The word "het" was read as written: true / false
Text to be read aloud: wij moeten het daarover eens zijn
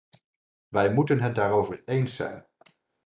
true